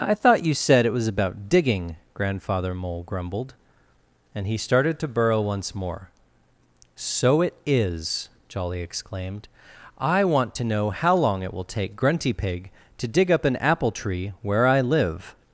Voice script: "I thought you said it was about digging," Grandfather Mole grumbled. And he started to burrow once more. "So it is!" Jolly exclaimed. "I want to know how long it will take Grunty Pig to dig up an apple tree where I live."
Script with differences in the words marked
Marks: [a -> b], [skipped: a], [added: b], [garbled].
"I thought you said it was about digging," Grandfather Mole grumbled. And he started to burrow once more. "So it is!" Jolly exclaimed. "I want to know how long it will take Grunty Pig to dig up an apple tree where I live."